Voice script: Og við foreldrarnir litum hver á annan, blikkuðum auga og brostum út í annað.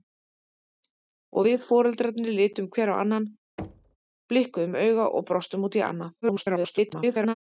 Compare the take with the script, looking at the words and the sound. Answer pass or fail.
fail